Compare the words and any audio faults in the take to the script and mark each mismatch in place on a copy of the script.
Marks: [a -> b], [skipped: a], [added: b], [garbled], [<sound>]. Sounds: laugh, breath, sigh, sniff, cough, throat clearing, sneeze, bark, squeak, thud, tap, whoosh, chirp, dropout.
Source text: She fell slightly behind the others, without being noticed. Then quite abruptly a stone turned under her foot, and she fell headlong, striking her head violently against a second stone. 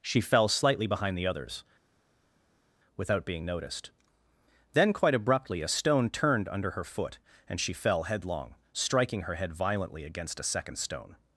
She fell slightly behind the others, without being noticed. Then quite abruptly a stone turned under her foot, and she fell headlong, striking her head violently against a second stone.